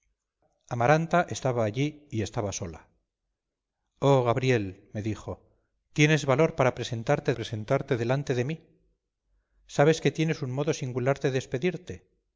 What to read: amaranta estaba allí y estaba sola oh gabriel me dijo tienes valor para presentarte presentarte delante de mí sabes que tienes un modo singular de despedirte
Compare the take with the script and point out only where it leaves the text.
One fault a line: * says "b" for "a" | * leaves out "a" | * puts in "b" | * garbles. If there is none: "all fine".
all fine